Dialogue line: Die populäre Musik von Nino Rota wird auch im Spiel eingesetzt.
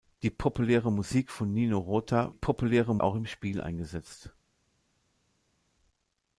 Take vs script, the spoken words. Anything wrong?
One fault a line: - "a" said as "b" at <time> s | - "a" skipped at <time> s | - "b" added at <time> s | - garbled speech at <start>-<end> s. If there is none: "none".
- "wird" said as "populäre" at 2.3 s